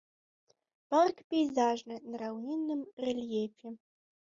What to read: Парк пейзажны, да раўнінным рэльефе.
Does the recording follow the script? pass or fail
fail